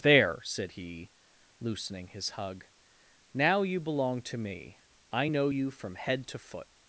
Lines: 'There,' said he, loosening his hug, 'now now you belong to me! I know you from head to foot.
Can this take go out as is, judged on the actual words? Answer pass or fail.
fail